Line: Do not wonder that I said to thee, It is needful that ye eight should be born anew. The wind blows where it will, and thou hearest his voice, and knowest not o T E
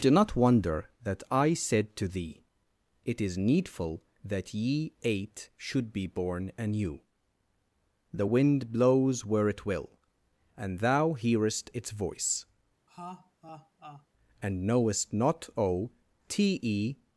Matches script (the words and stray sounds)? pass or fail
fail